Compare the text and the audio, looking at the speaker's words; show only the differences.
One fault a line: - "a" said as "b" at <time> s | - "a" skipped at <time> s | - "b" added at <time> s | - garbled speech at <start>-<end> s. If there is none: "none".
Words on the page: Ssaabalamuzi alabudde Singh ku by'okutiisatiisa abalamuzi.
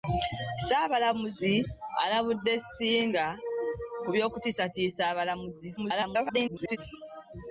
- garbled speech at 5.8-6.8 s